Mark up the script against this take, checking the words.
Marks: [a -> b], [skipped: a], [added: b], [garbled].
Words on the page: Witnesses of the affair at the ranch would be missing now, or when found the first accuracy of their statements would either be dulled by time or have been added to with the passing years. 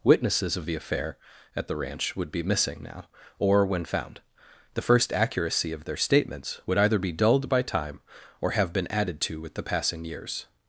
Witnesses of the affair at the ranch would be missing now, or when found the first accuracy of their statements would either be dulled by time or have been added to with the passing years.